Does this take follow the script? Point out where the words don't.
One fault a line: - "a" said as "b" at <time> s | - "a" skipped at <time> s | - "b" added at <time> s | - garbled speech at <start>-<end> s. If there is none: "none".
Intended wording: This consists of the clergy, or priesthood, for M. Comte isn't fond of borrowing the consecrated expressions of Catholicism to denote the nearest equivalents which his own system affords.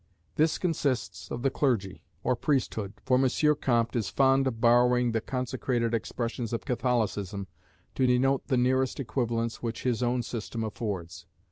- "isn't" said as "is" at 4.0 s